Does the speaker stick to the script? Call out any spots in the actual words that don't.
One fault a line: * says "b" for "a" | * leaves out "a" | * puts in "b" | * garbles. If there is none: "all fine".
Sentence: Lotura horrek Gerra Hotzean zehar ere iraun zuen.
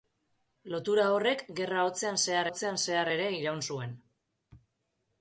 * puts in "Hotzean zehar"